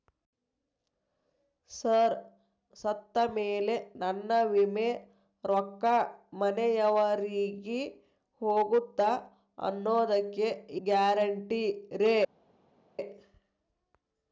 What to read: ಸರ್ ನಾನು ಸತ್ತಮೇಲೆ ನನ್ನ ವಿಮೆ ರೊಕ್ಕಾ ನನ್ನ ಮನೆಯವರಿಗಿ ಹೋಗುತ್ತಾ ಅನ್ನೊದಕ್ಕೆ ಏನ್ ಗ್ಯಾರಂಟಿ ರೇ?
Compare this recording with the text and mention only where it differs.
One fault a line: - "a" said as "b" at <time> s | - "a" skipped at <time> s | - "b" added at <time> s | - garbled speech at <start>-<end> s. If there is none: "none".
- "ನಾನು" skipped at 2.1 s
- "ನನ್ನ" skipped at 6.0 s
- "ಏನ್" skipped at 10.5 s